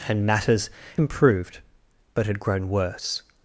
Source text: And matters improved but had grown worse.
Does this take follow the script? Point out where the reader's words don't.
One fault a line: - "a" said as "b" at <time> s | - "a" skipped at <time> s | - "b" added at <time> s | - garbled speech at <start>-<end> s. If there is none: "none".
none